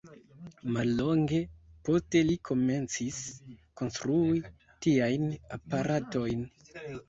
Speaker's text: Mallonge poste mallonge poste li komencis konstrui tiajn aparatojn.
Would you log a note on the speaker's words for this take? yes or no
yes